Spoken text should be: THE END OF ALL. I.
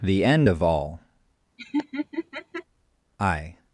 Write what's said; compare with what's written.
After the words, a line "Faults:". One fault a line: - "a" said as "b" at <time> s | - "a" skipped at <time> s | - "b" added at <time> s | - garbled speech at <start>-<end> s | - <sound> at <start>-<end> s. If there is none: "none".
THE END OF ALL. I.
Faults:
- laugh at 1.6-2.6 s